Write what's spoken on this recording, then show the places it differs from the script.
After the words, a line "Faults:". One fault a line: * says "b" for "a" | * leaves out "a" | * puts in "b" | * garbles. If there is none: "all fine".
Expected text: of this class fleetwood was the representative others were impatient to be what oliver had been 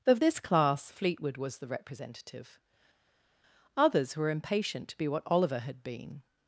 of this class fleetwood was the representative others were impatient to be what oliver had been
Faults:
all fine